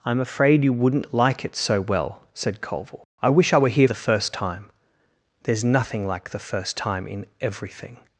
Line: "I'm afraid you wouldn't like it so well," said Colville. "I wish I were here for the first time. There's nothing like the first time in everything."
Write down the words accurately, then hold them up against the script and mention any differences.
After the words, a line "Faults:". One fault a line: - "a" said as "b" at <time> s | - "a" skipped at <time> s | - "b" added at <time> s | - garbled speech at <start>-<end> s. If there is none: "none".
"I'm afraid you wouldn't like it so well," said Colville. "I wish I were here the first time. There's nothing like the first time in everything."
Faults:
- "for" skipped at 3.9 s